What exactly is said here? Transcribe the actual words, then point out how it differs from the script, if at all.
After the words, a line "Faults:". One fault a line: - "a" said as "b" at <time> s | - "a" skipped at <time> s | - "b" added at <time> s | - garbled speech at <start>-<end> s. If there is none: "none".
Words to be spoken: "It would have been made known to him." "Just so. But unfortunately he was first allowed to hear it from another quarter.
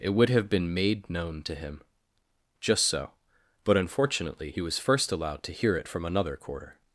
"It would have been made known to him." "Just so. But unfortunately he was first allowed to hear it from another quarter.
Faults:
none